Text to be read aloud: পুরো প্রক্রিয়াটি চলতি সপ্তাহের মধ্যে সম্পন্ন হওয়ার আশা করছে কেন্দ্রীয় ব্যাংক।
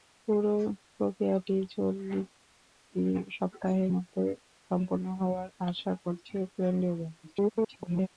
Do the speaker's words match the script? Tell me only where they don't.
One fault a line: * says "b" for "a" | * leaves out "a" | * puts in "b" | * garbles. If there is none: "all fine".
* garbles